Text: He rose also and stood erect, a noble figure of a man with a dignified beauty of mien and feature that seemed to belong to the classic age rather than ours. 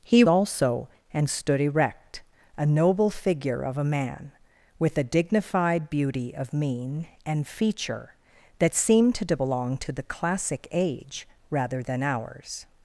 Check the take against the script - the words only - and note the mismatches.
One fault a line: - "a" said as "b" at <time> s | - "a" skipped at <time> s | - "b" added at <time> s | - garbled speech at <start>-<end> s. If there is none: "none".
- "rose" skipped at 0.2 s